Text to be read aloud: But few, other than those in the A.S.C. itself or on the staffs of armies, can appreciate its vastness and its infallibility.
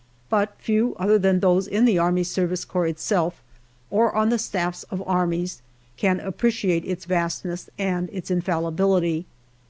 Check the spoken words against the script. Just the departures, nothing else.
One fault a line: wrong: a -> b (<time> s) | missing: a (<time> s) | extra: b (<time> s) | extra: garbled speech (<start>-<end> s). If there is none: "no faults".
no faults